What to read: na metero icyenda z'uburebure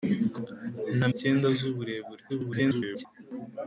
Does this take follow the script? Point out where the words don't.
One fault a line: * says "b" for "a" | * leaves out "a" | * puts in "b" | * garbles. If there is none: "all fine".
* leaves out "metero"
* garbles